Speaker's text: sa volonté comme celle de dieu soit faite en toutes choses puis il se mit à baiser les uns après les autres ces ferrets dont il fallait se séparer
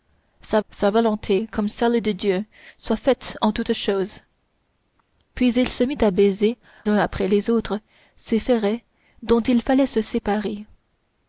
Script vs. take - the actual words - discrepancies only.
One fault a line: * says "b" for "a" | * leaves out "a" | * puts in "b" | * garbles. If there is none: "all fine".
* puts in "sa"
* leaves out "les"